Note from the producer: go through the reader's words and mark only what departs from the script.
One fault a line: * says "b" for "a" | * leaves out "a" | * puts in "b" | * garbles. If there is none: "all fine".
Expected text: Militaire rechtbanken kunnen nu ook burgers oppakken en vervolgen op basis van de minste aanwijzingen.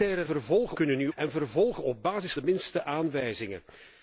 * says "vervolgen" for "rechtbanken"
* leaves out "ook burgers oppakken"
* leaves out "van"